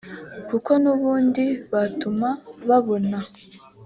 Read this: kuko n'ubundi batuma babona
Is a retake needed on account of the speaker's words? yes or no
no